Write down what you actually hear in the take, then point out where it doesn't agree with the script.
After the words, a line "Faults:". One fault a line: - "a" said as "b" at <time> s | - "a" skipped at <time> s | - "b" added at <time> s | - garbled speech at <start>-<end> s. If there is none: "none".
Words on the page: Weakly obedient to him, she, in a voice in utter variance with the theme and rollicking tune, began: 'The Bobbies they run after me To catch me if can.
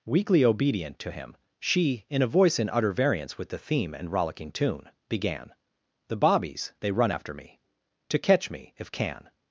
Weakly obedient to him, she, in a voice in utter variance with the theme and rollicking tune, began: 'The Bobbies they run after me To catch me if can.
Faults:
none